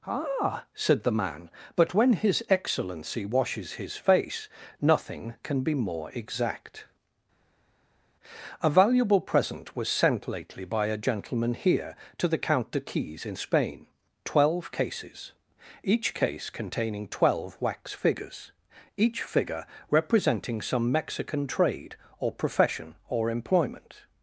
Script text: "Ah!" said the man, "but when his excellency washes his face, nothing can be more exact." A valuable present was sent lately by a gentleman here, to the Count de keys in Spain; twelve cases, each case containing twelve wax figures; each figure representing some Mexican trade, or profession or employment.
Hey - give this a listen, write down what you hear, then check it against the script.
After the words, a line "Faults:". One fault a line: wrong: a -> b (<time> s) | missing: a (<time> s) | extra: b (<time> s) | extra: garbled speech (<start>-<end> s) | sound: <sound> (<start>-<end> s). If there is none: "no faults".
"Ah!" said the man, "but when his excellency washes his face, nothing can be more exact." A valuable present was sent lately by a gentleman here, to the Count de keys in Spain; twelve cases, each case containing twelve wax figures; each figure representing some Mexican trade, or profession or employment.
Faults:
no faults